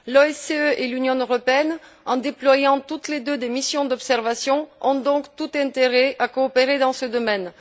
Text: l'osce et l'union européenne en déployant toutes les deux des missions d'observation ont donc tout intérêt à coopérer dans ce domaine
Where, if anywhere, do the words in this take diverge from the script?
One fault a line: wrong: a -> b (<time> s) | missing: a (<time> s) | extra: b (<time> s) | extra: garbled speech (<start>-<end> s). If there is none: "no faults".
no faults